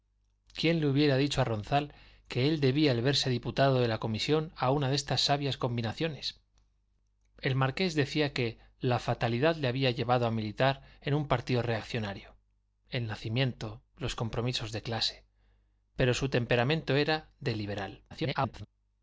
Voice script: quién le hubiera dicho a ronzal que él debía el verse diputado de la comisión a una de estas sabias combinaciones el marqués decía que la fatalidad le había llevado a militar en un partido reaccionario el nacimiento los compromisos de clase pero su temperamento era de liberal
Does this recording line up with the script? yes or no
no